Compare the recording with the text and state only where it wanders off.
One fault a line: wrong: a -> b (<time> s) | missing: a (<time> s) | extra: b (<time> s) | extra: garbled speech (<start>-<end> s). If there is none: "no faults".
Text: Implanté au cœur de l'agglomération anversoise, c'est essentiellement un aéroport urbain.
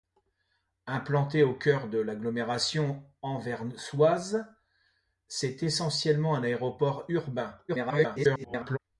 extra: garbled speech (7.7-8.8 s)